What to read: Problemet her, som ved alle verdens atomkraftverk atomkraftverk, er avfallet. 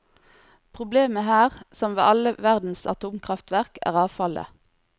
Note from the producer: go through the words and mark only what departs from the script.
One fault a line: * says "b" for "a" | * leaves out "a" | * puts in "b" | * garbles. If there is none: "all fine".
* leaves out "atomkraftverk"